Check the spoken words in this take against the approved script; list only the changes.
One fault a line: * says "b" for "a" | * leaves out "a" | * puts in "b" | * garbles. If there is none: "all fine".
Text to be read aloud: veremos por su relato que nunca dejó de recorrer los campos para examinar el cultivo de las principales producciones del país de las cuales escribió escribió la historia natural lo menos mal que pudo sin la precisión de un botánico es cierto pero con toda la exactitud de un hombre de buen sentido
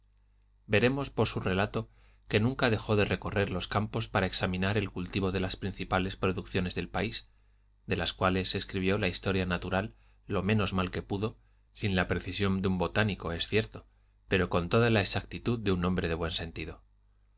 * leaves out "escribió"